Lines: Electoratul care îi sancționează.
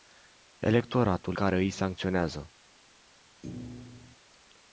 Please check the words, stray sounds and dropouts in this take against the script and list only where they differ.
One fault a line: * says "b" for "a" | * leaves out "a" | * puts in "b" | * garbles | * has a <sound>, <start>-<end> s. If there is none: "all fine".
* has a thud, 3.4-4.2 s